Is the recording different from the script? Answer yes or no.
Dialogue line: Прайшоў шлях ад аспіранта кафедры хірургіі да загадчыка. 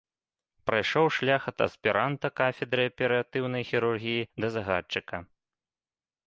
yes